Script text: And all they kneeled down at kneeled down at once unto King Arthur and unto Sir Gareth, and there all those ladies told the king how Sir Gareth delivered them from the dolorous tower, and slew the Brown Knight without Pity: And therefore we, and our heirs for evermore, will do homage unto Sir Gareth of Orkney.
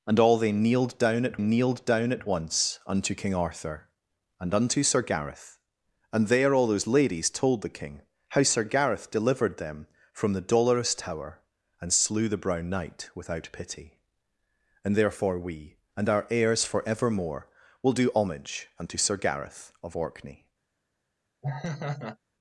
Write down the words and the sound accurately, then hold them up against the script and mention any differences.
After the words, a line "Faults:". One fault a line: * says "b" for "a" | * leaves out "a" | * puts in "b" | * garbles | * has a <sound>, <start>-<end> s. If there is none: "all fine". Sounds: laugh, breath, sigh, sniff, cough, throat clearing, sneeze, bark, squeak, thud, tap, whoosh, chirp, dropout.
And all they kneeled down at kneeled down at once unto King Arthur and unto Sir Gareth, and there all those ladies told the king how Sir Gareth delivered them from the dolorous tower, and slew the Brown Knight without Pity: And therefore we, and our heirs for evermore, will do homage unto Sir Gareth of Orkney.
Faults:
* has a laugh, 21.4-22.2 s